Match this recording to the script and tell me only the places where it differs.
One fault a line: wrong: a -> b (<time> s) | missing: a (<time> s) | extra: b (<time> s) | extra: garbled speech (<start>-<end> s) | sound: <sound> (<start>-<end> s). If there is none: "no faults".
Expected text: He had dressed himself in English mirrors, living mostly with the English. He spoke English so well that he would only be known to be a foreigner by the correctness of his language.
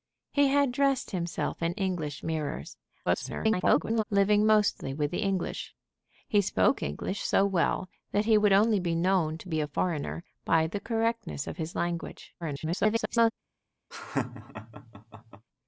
extra: garbled speech (3.1-4.0 s)
extra: garbled speech (12.4-13.3 s)
sound: laugh (13.9-15.5 s)